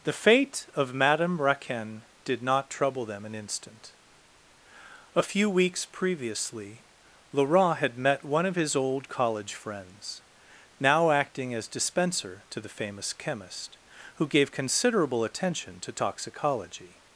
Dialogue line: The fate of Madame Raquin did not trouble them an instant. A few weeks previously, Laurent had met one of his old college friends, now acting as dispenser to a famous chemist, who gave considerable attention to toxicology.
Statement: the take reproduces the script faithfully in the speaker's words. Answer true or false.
false